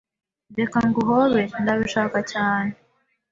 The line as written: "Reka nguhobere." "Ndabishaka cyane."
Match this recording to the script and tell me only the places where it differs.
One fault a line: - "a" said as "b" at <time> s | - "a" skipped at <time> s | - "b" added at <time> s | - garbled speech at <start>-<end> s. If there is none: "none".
none